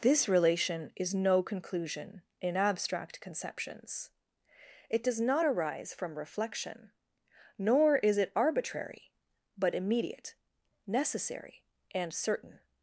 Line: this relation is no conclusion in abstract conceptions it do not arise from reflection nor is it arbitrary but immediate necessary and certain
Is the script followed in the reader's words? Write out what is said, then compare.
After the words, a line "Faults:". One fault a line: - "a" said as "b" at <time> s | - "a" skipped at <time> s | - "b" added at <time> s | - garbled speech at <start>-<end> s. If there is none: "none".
this relation is no conclusion in abstract conceptions it does not arise from reflection nor is it arbitrary but immediate necessary and certain
Faults:
- "do" said as "does" at 5.0 s